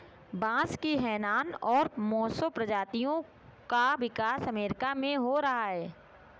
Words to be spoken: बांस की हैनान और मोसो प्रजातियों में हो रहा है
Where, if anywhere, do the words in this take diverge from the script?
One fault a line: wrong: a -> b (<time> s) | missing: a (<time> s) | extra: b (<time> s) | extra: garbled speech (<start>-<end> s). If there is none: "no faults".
extra: का विकास अमेरिका (3.7 s)